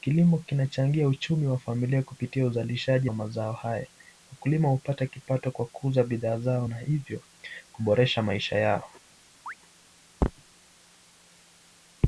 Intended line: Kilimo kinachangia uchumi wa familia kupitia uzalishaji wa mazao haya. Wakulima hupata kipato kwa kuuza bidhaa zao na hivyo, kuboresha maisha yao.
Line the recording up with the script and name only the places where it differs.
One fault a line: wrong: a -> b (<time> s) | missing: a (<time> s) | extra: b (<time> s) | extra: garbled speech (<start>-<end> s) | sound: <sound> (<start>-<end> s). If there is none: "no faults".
sound: chirp (9.5-9.5 s)